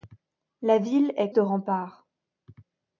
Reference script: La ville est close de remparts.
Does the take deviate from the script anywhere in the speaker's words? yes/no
yes